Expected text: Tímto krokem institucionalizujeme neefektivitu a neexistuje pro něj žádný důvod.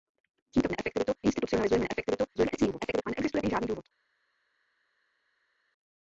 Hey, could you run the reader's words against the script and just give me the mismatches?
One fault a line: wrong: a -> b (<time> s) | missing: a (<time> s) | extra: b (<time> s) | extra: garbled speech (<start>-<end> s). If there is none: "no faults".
wrong: krokem -> neefektivitu (0.7 s)
extra: garbled speech (2.3-3.0 s)
missing: pro (3.4 s)